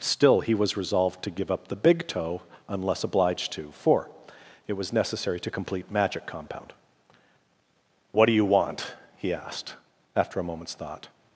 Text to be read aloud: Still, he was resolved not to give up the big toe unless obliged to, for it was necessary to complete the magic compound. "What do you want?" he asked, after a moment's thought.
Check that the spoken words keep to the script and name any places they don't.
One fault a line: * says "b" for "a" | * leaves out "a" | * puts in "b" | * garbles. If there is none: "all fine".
* leaves out "not"
* leaves out "the"